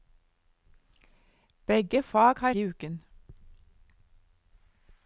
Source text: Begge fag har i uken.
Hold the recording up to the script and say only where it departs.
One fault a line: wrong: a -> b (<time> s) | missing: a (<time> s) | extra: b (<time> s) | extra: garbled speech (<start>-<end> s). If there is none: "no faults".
no faults